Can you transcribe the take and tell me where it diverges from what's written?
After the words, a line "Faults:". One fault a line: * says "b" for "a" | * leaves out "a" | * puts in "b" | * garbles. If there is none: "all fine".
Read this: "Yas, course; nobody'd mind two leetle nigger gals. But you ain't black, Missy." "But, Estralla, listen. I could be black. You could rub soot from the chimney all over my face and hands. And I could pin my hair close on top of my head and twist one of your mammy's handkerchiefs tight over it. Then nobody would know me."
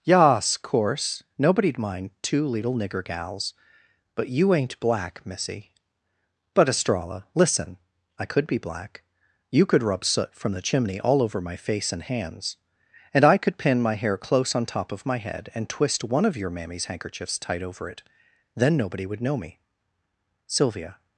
"Yas, course; nobody'd mind two leetle nigger gals. But you ain't black, Missy." "But, Estralla, listen. I could be black. You could rub soot from the chimney all over my face and hands. And I could pin my hair close on top of my head and twist one of your mammy's handkerchiefs tight over it. Then nobody would know me." Sylvia
Faults:
* puts in "Sylvia"